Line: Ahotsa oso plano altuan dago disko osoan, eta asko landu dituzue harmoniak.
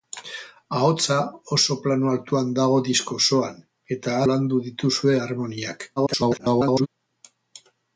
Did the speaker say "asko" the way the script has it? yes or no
no